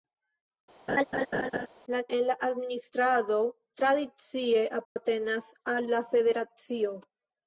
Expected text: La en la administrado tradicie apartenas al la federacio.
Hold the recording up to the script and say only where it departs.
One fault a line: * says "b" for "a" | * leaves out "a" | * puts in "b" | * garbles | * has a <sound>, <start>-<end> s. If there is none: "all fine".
* has a laugh, 0.9-1.7 s
* has a dropout, 4.8-5.0 s